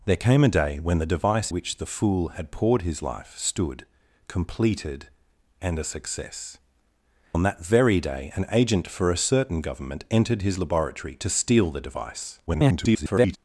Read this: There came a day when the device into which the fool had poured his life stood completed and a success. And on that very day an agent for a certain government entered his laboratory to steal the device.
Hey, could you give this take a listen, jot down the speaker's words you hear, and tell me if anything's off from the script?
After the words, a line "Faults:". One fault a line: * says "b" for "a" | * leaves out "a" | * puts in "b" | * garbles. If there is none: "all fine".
There came a day when the device which the fool had poured his life stood completed and a success. On that very day an agent for a certain government entered his laboratory to steal the device. [garbled]
Faults:
* leaves out "into"
* leaves out "And"
* garbles